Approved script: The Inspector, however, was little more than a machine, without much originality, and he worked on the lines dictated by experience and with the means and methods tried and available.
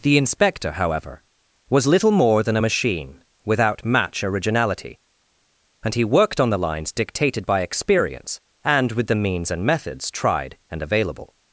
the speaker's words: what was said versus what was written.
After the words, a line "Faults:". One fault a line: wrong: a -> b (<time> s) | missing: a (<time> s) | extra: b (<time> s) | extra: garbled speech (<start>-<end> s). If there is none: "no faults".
The Inspector, however, was little more than a machine, without match originality, and he worked on the lines dictated by experience and with the means and methods tried and available.
Faults:
wrong: much -> match (3.8 s)